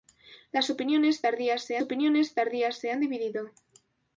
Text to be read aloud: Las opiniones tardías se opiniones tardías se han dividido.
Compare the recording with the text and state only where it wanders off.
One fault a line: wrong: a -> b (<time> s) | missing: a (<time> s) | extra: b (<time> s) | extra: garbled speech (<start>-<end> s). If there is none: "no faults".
no faults